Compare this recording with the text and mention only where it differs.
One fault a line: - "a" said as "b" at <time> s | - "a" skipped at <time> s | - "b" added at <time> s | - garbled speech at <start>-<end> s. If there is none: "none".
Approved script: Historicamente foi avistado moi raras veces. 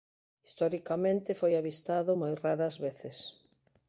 none